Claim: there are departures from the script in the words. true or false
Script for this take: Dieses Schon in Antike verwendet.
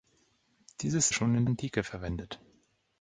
false